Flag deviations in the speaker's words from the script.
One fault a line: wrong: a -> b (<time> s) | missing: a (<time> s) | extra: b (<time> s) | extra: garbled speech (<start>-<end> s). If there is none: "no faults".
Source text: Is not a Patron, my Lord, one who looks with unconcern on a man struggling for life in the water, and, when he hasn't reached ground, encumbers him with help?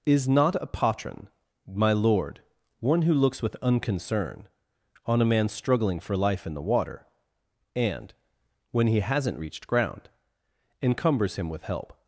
no faults